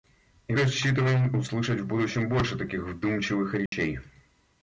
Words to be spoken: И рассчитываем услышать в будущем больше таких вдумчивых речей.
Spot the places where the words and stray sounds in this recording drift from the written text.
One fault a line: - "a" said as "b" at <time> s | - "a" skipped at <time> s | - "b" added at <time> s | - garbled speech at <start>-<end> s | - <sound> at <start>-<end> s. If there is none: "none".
- dropout at 3.7-3.7 s